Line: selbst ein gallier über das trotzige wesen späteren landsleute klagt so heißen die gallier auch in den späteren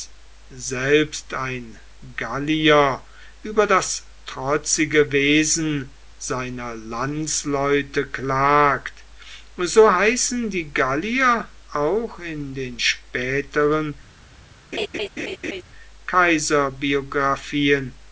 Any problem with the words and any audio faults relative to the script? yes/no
yes